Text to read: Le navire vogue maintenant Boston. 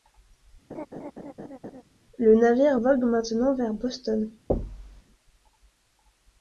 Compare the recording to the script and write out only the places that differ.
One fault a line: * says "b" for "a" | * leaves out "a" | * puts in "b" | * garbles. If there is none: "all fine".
* puts in "vers"